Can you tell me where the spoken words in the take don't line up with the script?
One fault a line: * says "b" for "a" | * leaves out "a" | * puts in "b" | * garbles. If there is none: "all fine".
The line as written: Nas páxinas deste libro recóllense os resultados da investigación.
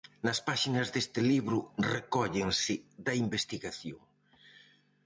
* leaves out "os resultados"